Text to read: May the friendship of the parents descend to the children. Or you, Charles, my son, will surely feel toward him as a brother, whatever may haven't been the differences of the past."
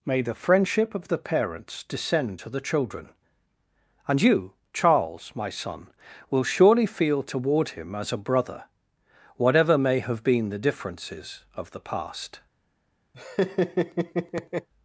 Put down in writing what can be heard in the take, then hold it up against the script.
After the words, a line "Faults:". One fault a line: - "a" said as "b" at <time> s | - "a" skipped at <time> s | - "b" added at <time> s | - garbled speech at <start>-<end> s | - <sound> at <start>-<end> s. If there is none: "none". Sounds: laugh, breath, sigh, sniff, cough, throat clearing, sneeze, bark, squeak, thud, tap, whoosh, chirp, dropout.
May the friendship of the parents descend to the children. And you, Charles, my son, will surely feel toward him as a brother, whatever may have been the differences of the past."
Faults:
- "Or" said as "And" at 4.1 s
- "haven't" said as "have" at 10.0 s
- laugh at 13.1-14.7 s